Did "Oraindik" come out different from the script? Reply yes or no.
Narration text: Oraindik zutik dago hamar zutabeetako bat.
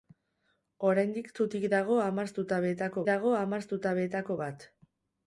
no